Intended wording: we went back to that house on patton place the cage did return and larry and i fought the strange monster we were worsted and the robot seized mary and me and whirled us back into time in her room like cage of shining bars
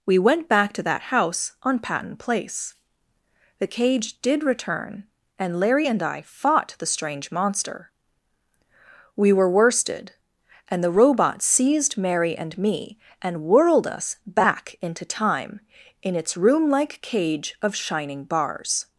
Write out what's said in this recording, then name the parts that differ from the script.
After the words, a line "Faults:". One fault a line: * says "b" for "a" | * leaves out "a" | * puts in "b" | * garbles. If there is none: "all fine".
we went back to that house on patton place the cage did return and larry and i fought the strange monster we were worsted and the robot seized mary and me and whirled us back into time in its room like cage of shining bars
Faults:
* says "its" for "her"